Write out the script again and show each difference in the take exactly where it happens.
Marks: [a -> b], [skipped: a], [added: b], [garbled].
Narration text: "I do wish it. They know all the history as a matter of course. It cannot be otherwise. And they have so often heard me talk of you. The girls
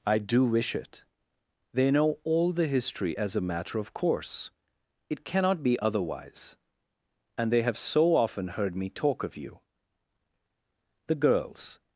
"I do wish it. They know all the history as a matter of course. It cannot be otherwise. And they have so often heard me talk of you. The girls